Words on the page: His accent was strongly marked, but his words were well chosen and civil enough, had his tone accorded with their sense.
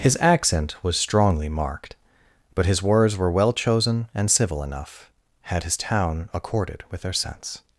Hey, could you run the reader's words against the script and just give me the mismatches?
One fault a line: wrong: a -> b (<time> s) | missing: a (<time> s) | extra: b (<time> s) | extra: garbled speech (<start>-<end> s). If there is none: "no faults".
wrong: tone -> town (5.8 s)